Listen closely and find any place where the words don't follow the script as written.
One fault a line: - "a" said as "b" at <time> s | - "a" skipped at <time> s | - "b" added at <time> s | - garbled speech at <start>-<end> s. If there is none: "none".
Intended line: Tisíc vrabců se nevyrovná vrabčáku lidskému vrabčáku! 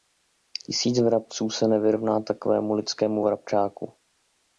- "vrabčáku" said as "takovému" at 2.2 s